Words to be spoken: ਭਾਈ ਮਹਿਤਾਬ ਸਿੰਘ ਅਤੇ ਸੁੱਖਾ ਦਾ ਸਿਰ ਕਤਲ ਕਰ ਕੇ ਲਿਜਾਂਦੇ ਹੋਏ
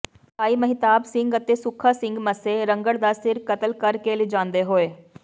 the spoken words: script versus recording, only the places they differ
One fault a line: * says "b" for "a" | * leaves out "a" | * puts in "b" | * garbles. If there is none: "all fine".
* puts in "ਸਿੰਘ ਮੱਸੇ ਰੰਘੜ"